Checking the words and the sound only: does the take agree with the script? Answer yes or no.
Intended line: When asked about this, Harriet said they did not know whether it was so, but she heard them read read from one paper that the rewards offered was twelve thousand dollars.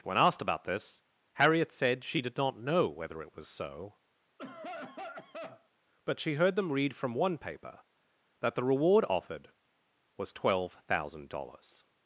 no